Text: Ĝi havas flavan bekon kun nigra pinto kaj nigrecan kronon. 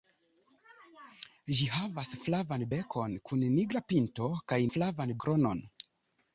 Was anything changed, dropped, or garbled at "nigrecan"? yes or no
yes